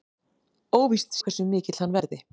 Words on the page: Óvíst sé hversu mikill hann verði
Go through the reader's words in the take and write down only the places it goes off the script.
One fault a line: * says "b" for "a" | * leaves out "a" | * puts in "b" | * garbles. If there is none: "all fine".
* leaves out "sé"